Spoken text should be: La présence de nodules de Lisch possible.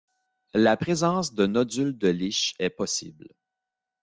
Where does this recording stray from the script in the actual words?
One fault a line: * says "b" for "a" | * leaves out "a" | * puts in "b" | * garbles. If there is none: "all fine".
* puts in "est"